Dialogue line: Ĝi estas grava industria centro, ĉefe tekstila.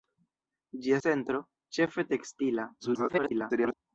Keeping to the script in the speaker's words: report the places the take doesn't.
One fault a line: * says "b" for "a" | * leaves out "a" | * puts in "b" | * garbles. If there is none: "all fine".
* leaves out "estas grava industria"
* garbles